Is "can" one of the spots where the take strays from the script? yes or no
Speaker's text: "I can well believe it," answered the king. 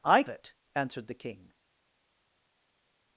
yes